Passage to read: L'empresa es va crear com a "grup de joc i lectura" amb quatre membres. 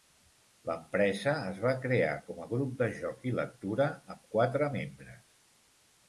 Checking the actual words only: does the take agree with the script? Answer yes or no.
yes